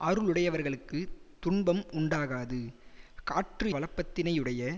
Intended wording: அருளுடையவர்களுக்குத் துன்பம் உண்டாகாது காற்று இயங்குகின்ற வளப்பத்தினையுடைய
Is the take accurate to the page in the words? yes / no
no